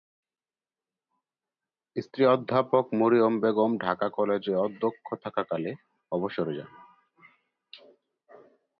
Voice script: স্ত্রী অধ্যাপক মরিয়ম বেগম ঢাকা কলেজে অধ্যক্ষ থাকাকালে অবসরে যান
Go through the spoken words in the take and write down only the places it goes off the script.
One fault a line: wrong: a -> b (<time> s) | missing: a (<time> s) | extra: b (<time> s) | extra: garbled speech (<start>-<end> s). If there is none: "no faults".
no faults